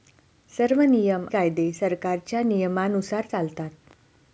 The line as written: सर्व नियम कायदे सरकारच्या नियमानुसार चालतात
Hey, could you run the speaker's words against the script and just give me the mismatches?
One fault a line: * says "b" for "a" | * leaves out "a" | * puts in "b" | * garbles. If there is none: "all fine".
all fine